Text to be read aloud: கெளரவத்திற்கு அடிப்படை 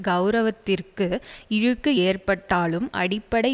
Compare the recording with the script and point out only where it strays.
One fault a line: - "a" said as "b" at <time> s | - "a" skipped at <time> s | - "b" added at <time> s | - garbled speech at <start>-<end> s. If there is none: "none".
- "இழுக்கு ஏற்பட்டாலும்" added at 1.5 s